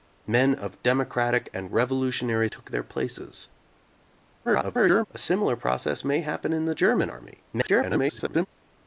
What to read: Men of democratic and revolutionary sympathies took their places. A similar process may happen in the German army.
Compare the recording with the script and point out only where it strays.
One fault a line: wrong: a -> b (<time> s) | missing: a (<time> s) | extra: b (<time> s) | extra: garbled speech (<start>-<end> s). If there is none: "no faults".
missing: sympathies (2.5 s)
extra: garbled speech (4.4-5.1 s)
extra: garbled speech (7.5-8.5 s)